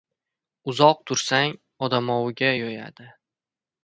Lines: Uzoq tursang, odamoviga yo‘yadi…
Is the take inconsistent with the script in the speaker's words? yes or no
no